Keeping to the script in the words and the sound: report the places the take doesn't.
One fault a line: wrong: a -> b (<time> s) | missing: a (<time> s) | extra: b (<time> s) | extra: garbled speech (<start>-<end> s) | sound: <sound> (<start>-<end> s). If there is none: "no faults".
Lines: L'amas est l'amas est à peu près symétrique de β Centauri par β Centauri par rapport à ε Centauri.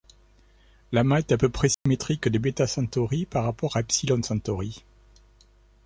missing: l'amas est (1.3 s)
sound: dropout (1.7-1.9 s)
missing: β Centauri par (3.4 s)